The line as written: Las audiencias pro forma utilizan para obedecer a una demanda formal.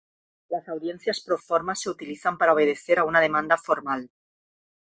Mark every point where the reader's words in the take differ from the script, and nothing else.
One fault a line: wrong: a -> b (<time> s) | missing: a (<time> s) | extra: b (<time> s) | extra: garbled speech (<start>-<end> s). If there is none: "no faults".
extra: se (1.7 s)